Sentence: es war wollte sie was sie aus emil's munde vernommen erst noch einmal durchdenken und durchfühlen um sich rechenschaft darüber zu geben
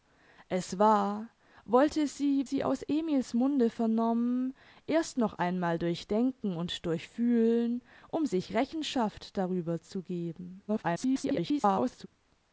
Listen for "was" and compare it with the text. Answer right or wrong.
wrong